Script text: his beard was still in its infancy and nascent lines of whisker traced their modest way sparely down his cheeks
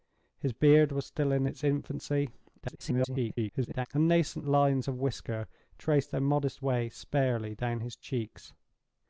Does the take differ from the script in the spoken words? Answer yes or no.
yes